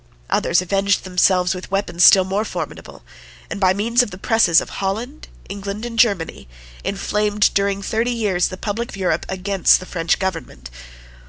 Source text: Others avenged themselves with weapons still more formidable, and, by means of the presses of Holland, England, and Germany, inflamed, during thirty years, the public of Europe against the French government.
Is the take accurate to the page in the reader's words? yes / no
yes